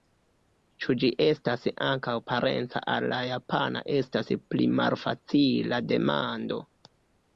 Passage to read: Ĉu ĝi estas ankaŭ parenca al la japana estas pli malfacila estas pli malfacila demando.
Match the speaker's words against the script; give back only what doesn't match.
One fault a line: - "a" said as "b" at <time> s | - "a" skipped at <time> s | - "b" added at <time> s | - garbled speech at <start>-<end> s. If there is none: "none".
- "estas pli malfacila" skipped at 5.8 s